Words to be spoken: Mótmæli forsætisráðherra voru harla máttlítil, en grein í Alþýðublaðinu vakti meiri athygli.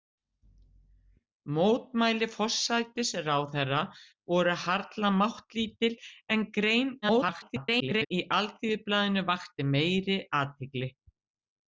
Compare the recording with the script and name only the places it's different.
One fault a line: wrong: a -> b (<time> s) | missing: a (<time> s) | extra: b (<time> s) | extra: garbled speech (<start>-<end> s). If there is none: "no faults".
extra: garbled speech (7.0-8.1 s)